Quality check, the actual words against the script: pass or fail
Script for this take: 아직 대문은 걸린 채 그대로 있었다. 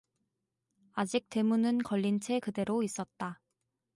pass